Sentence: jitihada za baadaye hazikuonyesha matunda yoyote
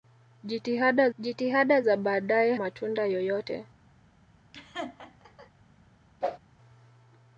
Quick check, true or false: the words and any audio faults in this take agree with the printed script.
false